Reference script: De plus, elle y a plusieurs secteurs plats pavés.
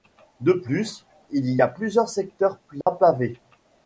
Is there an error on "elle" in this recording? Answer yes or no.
yes